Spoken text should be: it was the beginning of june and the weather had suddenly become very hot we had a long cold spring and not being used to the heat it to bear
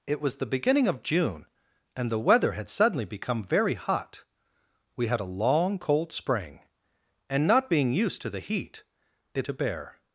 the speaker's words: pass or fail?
pass